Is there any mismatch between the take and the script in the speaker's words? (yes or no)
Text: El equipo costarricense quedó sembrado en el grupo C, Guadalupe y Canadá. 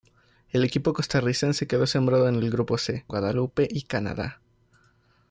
no